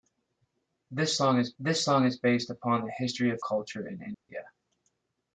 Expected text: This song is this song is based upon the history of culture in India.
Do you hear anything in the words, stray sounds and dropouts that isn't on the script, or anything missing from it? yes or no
yes